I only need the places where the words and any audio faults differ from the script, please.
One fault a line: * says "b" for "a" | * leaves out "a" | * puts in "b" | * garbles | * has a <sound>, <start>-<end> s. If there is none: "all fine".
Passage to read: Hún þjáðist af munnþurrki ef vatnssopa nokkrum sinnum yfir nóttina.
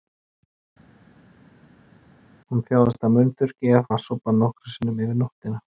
all fine